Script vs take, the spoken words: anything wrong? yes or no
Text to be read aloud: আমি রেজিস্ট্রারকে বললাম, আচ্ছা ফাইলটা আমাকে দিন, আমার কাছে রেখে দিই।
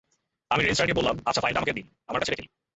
no